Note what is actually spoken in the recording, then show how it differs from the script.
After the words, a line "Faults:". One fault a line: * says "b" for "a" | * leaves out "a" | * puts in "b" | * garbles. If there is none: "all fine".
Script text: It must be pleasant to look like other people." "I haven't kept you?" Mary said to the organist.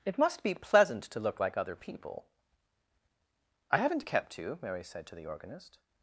It must be pleasant to look like other people." "I haven't kept you?" Mary said to the organist.
Faults:
all fine